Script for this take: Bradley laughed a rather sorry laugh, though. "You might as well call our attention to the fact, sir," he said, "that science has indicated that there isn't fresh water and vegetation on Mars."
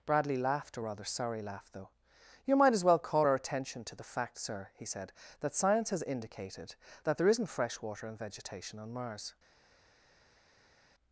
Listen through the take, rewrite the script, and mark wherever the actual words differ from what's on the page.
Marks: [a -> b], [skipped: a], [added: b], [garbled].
Bradley laughed a rather sorry laugh, though. "You might as well call our attention to the fact, sir," he said, "that science has indicated that there isn't fresh water and vegetation on Mars."